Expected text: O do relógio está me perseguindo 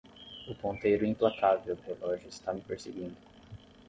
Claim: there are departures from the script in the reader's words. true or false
true